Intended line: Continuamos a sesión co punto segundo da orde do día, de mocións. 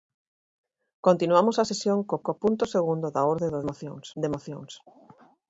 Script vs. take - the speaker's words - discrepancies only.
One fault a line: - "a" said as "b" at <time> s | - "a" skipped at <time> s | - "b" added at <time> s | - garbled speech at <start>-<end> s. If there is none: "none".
- "co" added at 2.2 s
- "día" said as "mocións" at 3.7 s